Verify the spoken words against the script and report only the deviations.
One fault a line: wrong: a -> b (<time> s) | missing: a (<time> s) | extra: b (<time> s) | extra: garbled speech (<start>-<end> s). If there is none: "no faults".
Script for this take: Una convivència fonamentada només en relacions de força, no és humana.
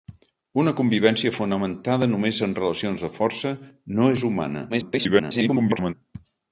extra: garbled speech (4.7-5.9 s)